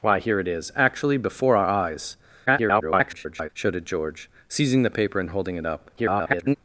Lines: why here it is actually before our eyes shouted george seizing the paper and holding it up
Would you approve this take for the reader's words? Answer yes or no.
no